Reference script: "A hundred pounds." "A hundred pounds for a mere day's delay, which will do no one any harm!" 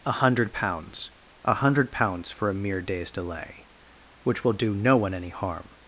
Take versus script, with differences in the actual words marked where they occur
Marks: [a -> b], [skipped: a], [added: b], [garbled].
"A hundred pounds." "A hundred pounds for a mere day's delay, which will do no one any harm!"